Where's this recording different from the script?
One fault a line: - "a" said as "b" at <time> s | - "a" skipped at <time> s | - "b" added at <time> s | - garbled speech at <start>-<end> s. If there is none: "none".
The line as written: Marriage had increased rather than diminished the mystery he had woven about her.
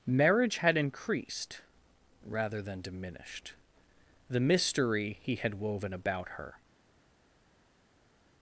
none